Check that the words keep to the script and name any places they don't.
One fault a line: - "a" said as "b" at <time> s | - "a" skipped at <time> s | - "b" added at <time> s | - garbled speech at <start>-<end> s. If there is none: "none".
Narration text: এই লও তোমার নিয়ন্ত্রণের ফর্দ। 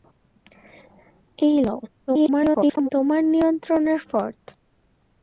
- garbled speech at 2.1-2.9 s